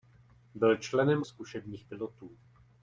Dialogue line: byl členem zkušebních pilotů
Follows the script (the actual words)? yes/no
yes